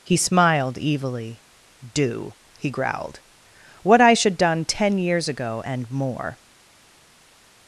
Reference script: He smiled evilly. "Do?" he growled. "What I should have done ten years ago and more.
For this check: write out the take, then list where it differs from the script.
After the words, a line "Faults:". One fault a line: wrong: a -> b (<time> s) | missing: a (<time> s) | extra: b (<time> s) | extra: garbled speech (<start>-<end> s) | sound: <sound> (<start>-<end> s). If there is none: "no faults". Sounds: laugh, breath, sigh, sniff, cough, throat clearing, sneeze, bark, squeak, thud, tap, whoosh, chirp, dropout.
He smiled evilly. "Do?" he growled. "What I should done ten years ago and more.
Faults:
missing: have (4.4 s)